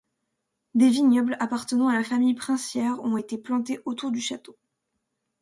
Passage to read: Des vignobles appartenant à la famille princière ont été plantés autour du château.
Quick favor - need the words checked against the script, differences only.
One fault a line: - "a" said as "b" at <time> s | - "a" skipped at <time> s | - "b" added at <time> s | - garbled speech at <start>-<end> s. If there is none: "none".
none